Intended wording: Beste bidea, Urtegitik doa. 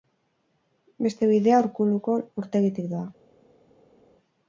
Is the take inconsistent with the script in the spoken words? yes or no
yes